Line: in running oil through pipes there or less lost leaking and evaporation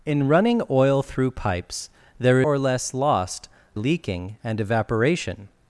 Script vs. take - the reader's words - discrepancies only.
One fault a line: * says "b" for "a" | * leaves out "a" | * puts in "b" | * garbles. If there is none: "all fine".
all fine